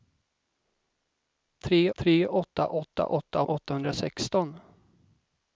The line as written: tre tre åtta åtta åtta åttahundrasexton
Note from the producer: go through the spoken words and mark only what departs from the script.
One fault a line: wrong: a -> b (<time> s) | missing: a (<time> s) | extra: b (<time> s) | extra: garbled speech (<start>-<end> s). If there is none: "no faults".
no faults